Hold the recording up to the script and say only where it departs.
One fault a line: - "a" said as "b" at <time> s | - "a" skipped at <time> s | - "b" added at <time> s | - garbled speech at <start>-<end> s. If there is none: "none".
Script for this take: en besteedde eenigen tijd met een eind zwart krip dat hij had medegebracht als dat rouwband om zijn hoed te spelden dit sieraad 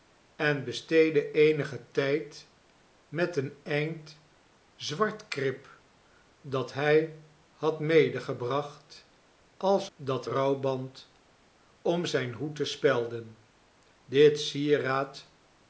none